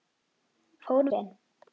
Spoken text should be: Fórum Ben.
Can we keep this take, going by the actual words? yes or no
yes